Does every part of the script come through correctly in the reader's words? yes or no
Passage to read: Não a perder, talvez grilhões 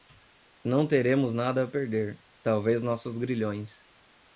no